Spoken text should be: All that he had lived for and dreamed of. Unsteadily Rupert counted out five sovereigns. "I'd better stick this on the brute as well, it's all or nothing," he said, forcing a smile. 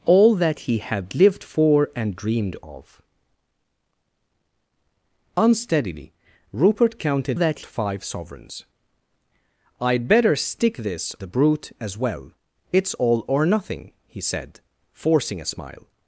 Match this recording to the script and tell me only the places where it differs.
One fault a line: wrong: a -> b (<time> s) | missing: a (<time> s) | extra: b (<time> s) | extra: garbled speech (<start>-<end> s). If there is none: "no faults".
wrong: out -> that (7.3 s)
missing: on (11.1 s)